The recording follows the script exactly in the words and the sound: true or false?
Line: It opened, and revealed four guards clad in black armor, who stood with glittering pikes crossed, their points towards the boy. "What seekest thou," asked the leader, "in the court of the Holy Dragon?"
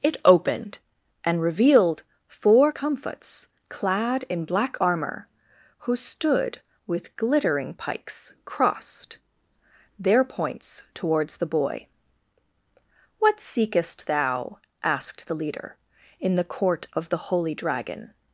false